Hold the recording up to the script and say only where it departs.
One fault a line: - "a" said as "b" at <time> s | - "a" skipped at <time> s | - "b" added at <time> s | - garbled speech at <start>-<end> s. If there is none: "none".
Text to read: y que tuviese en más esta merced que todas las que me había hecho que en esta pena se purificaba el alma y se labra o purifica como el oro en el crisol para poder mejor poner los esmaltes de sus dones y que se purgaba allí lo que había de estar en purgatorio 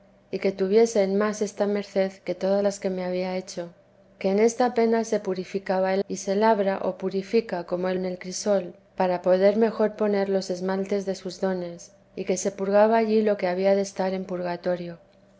- "alma" skipped at 6.0 s
- "oro" skipped at 8.0 s